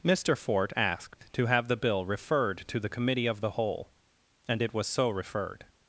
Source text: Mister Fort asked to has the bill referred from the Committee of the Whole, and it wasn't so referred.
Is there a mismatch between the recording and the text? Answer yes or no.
yes